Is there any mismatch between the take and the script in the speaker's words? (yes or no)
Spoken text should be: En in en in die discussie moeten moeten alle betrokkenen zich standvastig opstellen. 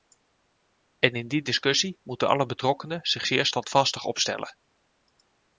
yes